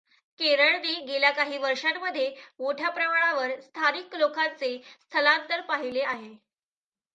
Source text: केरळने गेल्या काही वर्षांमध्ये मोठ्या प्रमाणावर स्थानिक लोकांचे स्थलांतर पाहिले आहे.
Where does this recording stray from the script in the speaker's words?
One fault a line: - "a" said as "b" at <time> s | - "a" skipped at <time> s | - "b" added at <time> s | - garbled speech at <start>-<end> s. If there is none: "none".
none